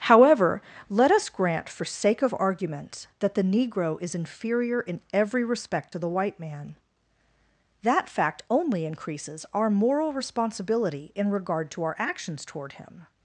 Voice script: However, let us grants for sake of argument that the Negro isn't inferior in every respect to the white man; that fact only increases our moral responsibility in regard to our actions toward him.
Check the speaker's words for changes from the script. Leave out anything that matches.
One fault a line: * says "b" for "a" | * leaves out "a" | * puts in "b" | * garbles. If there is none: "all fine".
* says "grant" for "grants"
* says "is" for "isn't"